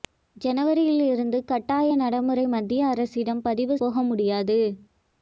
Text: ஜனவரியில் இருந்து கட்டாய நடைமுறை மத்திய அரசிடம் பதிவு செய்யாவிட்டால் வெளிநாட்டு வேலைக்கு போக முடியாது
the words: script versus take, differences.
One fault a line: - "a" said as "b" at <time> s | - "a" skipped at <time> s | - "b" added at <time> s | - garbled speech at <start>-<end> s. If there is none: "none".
- "செய்யாவிட்டால் வெளிநாட்டு வேலைக்கு" skipped at 3.8 s